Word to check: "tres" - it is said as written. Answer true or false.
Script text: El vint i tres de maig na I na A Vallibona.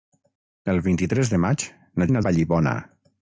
true